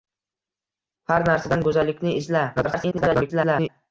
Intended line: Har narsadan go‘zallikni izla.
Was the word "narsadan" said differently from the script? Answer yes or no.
no